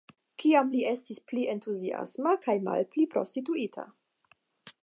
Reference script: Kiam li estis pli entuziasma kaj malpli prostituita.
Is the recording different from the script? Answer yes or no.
no